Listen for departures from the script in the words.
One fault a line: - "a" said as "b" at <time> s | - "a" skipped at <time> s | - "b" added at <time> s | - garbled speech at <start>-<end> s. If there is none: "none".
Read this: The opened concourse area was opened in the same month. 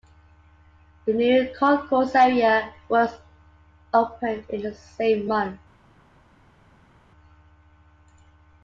- "opened" said as "new" at 1.1 s